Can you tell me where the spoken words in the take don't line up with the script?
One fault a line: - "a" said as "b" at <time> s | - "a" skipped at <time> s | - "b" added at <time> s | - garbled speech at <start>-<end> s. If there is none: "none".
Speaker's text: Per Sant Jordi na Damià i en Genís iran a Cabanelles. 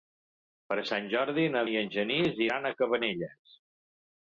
- "Damià" skipped at 1.6 s